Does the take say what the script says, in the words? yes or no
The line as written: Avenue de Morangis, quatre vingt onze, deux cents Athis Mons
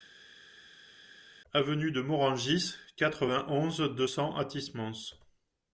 yes